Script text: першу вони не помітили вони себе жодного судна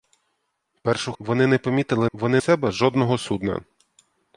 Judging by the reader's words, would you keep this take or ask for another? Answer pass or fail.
pass